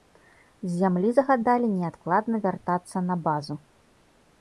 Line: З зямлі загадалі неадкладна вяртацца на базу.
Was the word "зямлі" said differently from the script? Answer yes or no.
no